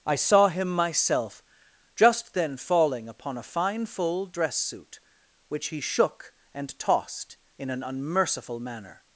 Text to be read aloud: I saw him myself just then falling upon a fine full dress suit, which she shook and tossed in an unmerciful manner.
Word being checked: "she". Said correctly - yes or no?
no